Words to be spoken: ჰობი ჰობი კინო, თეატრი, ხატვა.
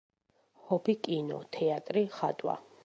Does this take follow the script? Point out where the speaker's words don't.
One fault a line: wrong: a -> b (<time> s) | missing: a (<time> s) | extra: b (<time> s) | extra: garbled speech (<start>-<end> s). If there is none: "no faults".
missing: ჰობი (0.9 s)